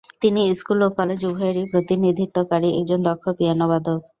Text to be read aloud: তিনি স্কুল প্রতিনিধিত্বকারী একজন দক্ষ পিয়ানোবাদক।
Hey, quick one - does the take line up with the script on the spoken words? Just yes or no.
no